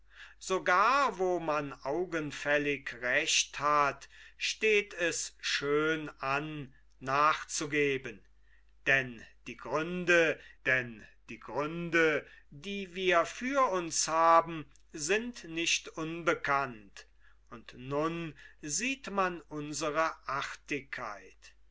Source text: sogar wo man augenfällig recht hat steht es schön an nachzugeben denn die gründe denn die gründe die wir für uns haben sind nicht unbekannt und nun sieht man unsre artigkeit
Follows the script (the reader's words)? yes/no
yes